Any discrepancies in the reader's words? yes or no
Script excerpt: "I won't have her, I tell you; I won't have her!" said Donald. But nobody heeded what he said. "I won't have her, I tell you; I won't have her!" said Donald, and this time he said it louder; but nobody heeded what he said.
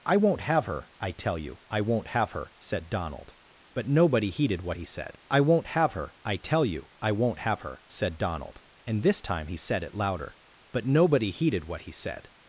no